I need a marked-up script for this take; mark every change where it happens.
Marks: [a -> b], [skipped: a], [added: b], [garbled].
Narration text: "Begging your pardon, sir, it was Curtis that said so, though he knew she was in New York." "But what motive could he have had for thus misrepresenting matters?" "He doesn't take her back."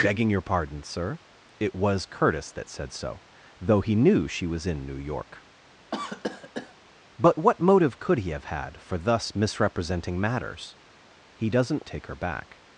"Begging your pardon, sir, it was Curtis that said so, though he knew she was in New York." "But what motive could he have had for thus misrepresenting matters?" "He doesn't take her back."